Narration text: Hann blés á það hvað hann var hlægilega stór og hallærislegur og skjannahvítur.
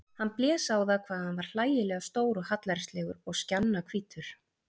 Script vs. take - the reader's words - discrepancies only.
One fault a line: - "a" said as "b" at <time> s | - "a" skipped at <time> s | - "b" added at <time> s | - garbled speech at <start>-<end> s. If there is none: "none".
none